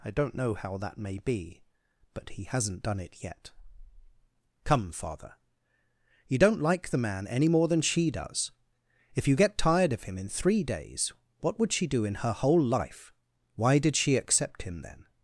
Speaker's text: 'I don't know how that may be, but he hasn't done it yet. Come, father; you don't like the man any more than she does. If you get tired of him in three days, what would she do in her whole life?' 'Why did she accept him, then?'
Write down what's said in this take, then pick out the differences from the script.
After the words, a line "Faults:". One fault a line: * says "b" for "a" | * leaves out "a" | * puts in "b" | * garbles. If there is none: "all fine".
'I don't know how that may be, but he hasn't done it yet. Come, father; you don't like the man any more than she does. If you get tired of him in three days, what would she do in her whole life?' 'Why did she accept him, then?'
Faults:
all fine